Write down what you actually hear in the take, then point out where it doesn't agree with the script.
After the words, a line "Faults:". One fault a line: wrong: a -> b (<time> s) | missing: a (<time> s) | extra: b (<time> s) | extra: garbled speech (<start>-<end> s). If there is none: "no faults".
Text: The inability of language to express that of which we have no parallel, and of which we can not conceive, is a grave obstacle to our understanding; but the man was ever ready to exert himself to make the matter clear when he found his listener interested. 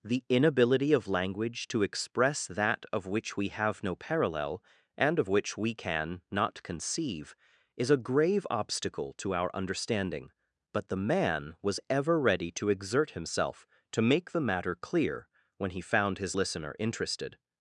The inability of language to express that of which we have no parallel, and of which we can not conceive, is a grave obstacle to our understanding; but the man was ever ready to exert himself to make the matter clear when he found his listener interested.
Faults:
no faults